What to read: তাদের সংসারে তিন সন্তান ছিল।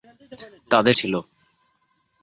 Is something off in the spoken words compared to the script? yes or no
yes